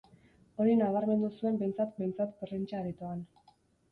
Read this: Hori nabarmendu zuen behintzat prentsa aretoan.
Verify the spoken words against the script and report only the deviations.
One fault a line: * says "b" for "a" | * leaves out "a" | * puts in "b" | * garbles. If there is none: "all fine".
* puts in "behintzat"